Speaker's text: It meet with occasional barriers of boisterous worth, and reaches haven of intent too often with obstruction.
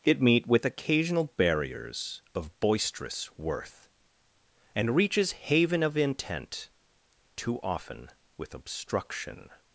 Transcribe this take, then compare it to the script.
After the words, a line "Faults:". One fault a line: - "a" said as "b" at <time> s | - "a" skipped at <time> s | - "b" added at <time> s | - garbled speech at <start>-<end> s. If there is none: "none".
It meet with occasional barriers of boisterous worth, and reaches haven of intent too often with obstruction.
Faults:
none